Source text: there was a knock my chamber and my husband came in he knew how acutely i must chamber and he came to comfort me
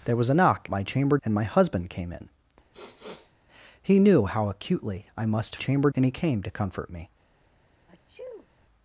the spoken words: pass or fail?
pass